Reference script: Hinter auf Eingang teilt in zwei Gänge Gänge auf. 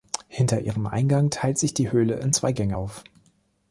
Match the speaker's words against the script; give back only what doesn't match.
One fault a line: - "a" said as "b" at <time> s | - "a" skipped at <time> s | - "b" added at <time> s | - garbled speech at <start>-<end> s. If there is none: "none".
- "auf" said as "ihrem" at 0.6 s
- "sich die Höhle" added at 1.6 s
- "Gänge" skipped at 2.8 s